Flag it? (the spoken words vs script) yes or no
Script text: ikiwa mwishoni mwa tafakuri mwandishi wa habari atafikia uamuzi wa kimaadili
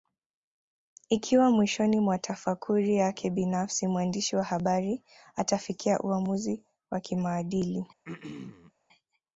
yes